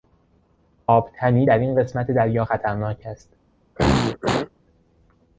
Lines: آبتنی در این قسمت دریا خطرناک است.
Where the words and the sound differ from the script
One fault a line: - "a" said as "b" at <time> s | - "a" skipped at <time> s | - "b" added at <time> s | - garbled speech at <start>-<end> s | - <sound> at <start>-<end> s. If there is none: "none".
- throat clearing at 3.8-4.5 s